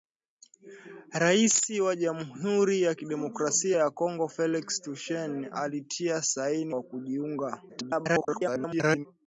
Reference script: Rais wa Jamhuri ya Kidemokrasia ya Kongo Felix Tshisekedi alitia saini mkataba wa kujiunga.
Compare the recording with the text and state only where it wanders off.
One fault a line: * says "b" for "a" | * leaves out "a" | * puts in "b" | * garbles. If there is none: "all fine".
* leaves out "mkataba"
* garbles